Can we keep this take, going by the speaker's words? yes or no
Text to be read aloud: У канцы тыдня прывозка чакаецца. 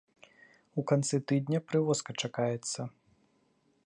yes